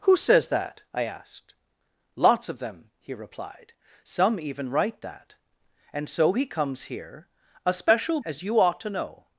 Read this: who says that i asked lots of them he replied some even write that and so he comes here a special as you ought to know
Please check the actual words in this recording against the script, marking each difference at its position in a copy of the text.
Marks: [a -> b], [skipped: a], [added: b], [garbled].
who says that i asked lots of them he replied some even write that and so he comes here a special as you ought to know